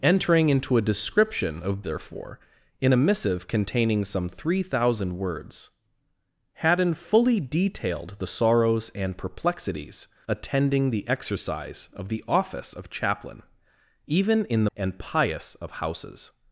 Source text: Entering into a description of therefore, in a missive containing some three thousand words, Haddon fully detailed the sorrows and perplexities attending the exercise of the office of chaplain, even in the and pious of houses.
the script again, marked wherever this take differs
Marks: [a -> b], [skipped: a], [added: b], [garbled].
Entering into a description of therefore, in a missive containing some three thousand words, Haddon fully detailed the sorrows and perplexities attending the exercise of the office of chaplain, even in the and pious of houses.